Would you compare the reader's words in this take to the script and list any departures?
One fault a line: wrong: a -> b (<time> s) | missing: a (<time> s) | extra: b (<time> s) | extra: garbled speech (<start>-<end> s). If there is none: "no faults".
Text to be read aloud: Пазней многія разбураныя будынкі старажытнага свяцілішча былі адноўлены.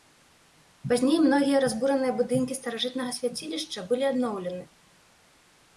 no faults